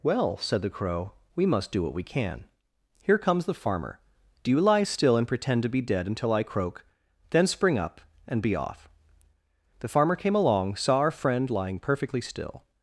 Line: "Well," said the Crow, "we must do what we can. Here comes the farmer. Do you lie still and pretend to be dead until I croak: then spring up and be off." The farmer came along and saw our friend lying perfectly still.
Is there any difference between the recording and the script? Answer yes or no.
yes